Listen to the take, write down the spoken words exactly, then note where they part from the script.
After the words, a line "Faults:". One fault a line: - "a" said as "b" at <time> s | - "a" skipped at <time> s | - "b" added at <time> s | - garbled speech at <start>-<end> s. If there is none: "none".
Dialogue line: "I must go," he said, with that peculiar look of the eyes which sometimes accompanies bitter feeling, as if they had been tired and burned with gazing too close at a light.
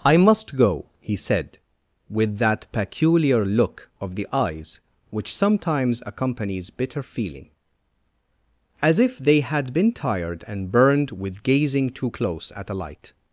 "I must go," he said, with that peculiar look of the eyes which sometimes accompanies bitter feeling, as if they had been tired and burned with gazing too close at a light.
Faults:
none